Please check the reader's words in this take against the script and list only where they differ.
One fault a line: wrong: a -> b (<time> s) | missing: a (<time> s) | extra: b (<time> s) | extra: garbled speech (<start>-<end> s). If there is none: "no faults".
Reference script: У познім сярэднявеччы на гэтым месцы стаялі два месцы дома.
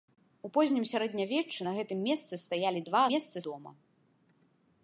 no faults